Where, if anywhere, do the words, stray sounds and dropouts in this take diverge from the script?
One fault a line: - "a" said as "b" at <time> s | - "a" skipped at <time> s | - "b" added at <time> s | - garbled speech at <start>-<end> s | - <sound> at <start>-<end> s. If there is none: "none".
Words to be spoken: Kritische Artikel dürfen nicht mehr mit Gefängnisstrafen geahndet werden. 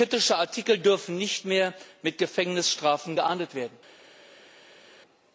none